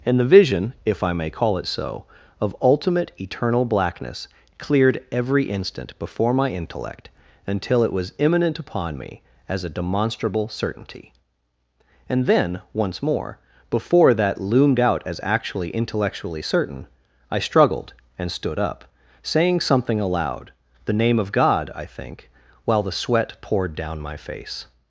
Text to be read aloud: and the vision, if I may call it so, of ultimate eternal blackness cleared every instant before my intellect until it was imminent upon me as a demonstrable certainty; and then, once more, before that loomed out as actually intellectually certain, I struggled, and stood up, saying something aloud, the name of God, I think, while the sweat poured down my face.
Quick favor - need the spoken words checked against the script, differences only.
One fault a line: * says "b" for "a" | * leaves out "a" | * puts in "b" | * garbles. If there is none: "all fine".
all fine